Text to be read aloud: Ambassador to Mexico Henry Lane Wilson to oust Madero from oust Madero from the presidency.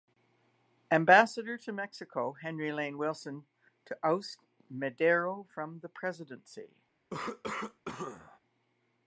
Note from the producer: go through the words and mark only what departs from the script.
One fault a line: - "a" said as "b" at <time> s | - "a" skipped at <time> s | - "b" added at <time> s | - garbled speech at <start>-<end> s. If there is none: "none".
- "oust Madero from" skipped at 5.8 s